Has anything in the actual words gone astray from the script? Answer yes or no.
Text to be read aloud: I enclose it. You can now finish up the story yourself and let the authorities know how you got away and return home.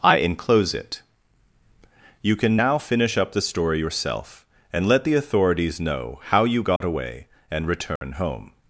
no